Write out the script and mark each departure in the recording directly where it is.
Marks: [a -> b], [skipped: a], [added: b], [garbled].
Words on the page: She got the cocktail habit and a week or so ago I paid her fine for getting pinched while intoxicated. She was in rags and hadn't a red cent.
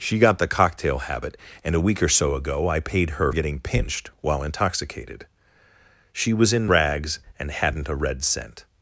She got the cocktail habit and a week or so ago I paid her [skipped: fine for] getting pinched while intoxicated. She was in rags and hadn't a red cent.